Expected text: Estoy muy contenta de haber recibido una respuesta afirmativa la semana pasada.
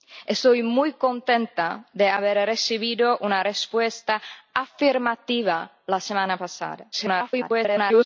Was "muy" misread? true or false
false